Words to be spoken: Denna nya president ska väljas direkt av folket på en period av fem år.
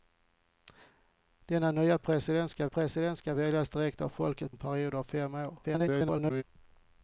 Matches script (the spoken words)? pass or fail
fail